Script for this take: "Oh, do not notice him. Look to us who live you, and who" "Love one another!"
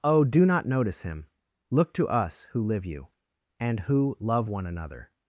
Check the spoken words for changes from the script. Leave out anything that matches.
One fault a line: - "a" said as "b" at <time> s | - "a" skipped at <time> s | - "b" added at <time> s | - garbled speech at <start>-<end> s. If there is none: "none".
none